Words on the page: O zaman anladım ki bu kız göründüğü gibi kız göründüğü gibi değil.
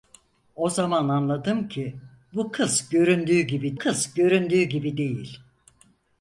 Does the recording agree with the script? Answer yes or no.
yes